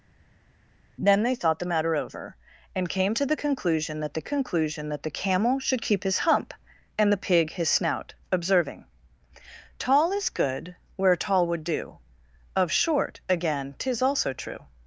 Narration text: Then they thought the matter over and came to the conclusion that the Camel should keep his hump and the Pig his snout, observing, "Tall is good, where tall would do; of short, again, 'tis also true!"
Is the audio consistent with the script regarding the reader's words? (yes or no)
no